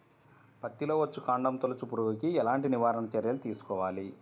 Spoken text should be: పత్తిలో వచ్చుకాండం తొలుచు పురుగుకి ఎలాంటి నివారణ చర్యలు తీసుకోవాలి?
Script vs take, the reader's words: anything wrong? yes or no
no